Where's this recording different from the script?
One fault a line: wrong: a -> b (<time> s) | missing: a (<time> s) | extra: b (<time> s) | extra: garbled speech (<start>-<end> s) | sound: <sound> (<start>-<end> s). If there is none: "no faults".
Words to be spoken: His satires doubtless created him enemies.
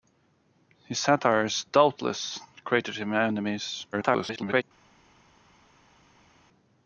extra: garbled speech (3.9-4.6 s)